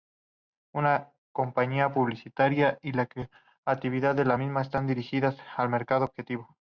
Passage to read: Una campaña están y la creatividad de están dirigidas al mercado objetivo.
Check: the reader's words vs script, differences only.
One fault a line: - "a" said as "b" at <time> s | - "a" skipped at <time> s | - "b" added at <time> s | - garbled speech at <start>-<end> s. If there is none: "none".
- "están" said as "publicitaria" at 1.9 s
- "la misma" added at 4.2 s